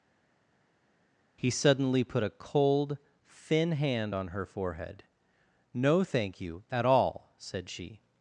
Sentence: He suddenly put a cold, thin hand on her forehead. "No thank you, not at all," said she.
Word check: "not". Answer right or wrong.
wrong